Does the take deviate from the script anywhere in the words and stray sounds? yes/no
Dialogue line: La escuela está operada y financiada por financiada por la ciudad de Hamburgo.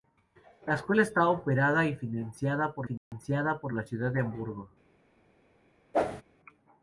yes